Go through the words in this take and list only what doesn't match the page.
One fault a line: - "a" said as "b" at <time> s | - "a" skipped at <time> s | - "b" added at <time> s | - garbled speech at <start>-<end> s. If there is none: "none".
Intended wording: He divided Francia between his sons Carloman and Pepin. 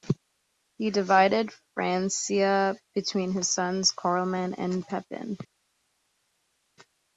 none